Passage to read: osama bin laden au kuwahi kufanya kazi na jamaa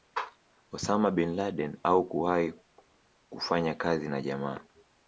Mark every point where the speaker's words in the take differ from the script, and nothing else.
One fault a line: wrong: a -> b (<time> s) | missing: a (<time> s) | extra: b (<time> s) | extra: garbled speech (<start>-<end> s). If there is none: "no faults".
no faults